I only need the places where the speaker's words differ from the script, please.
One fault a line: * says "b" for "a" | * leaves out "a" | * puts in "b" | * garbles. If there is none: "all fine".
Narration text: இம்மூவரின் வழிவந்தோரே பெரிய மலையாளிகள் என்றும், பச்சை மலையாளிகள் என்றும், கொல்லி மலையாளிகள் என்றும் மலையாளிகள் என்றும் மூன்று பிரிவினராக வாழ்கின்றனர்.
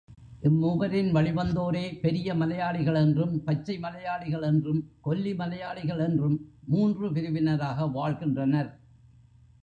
* leaves out "மலையாளிகள் என்றும்"